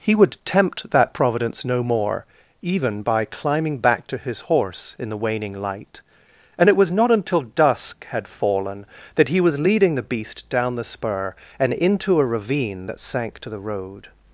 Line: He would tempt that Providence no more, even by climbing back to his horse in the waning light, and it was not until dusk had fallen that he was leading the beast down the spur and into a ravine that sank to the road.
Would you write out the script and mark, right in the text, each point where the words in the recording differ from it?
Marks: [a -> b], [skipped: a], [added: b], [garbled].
He would tempt that Providence no more, even by climbing back to his horse in the waning light, and it was not until dusk had fallen that he was leading the beast down the spur and into a ravine that sank to the road.